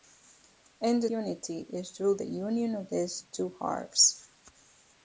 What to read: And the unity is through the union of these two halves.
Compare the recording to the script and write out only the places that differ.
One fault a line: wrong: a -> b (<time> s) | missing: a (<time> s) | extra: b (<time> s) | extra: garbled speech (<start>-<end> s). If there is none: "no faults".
no faults